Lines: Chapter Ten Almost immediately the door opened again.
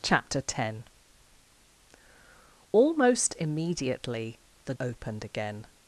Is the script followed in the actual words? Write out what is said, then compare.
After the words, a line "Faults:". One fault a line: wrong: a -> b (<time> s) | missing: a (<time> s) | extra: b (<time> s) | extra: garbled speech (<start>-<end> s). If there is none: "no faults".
Chapter Ten Almost immediately the opened again.
Faults:
missing: door (4.7 s)